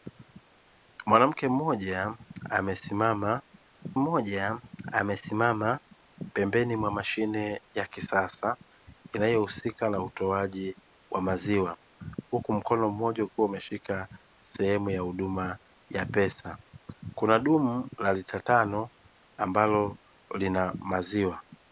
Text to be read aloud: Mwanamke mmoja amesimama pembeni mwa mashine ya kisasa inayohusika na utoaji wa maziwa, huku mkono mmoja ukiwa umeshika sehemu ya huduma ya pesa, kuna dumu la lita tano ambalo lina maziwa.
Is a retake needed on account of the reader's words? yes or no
yes